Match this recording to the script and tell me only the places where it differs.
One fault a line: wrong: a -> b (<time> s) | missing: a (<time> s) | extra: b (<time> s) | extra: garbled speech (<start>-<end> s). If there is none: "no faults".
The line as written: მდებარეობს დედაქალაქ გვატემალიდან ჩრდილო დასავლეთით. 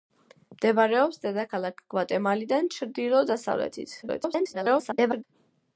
extra: garbled speech (4.0-5.2 s)